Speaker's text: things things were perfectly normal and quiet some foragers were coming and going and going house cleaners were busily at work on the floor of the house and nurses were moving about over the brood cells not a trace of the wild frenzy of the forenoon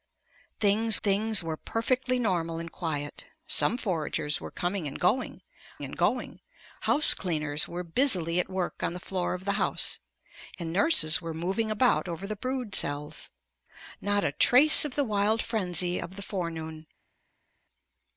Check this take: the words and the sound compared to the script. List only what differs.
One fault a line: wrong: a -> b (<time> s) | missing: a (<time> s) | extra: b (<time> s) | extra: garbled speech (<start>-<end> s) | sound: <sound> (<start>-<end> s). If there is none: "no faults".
no faults